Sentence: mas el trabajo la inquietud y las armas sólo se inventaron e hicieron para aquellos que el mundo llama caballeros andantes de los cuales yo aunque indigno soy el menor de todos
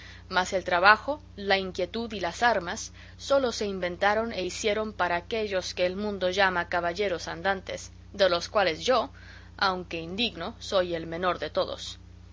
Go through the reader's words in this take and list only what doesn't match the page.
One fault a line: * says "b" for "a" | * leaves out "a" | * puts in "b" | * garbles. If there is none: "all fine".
all fine